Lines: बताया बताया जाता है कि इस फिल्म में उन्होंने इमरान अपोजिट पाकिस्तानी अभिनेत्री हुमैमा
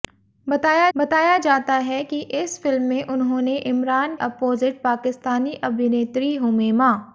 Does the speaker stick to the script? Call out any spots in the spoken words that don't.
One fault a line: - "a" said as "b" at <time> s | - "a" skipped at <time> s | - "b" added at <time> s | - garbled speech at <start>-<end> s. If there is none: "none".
none